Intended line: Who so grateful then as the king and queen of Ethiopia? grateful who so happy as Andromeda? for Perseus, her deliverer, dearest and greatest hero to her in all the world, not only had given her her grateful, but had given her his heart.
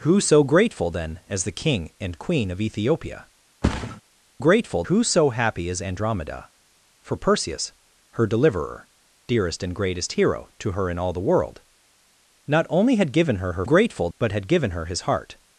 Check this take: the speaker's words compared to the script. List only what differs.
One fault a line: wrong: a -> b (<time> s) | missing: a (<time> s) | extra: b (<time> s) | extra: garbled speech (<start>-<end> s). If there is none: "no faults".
no faults